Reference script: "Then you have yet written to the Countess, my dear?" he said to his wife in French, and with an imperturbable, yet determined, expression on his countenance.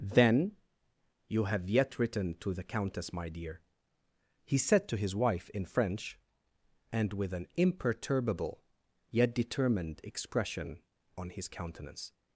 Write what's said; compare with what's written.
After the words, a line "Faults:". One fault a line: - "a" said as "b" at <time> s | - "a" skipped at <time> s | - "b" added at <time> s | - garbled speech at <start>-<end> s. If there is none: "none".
"Then you have yet written to the Countess, my dear?" he said to his wife in French, and with an imperturbable, yet determined, expression on his countenance.
Faults:
none